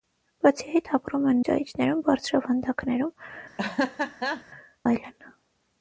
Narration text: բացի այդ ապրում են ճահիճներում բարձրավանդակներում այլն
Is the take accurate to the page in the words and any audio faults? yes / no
no